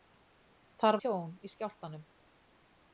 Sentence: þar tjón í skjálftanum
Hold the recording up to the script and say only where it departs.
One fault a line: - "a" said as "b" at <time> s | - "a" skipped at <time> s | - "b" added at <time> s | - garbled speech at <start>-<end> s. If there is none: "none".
none